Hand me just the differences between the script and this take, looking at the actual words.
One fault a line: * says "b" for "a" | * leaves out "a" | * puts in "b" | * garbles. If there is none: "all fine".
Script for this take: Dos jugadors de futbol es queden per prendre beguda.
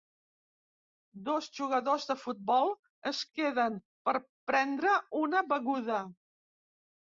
* puts in "una"